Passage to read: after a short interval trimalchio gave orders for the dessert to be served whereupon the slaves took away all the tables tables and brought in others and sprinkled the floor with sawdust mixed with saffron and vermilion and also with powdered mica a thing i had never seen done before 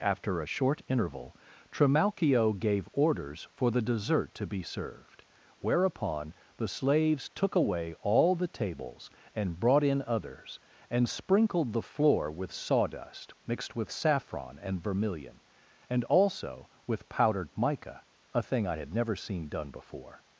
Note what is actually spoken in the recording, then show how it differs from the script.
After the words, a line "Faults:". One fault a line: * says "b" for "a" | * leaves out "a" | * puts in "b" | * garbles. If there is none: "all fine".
after a short interval trimalchio gave orders for the dessert to be served whereupon the slaves took away all the tables and brought in others and sprinkled the floor with sawdust mixed with saffron and vermilion and also with powdered mica a thing i had never seen done before
Faults:
* leaves out "tables"